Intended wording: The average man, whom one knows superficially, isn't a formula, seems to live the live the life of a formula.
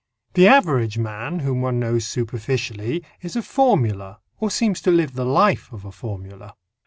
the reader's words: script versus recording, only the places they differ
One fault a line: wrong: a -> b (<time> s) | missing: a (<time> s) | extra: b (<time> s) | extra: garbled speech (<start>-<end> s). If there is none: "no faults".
wrong: isn't -> is (3.2 s)
extra: or (4.4 s)
missing: live the (5.2 s)